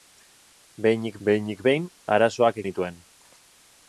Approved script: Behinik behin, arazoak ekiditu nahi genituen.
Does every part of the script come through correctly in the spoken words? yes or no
no